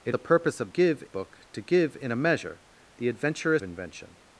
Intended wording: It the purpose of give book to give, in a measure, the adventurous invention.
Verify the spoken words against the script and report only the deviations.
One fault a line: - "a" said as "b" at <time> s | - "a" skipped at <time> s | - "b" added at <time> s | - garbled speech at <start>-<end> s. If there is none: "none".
none